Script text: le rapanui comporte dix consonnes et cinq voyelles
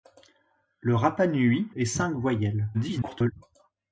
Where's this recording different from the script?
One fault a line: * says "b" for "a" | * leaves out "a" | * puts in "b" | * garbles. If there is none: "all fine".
* leaves out "comporte dix consonnes"
* garbles